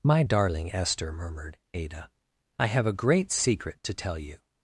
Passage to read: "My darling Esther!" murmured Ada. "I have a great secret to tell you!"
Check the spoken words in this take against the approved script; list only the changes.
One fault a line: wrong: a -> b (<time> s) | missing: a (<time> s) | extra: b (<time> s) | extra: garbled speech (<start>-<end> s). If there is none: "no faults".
no faults